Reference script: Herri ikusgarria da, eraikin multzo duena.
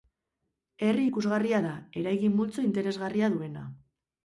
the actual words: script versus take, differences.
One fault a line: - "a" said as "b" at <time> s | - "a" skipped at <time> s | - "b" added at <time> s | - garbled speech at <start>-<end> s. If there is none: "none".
- "interesgarria" added at 2.7 s